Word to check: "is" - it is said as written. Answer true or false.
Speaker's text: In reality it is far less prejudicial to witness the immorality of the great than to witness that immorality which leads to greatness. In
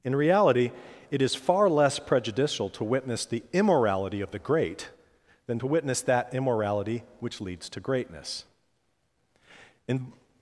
true